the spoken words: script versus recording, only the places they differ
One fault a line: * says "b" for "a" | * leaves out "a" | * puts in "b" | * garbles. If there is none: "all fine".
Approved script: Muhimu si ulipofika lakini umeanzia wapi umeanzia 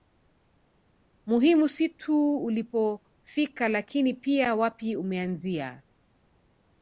* puts in "tu"
* says "pia" for "umeanzia"